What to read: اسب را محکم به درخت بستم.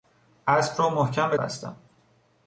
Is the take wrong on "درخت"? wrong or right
wrong